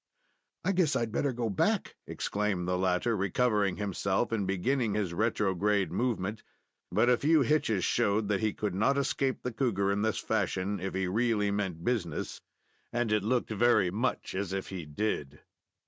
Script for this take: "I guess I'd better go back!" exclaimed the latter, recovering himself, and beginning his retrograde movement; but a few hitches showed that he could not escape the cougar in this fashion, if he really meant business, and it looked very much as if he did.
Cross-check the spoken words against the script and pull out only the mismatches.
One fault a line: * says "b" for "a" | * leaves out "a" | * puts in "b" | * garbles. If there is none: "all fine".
all fine